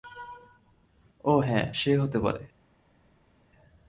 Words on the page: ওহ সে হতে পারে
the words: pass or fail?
fail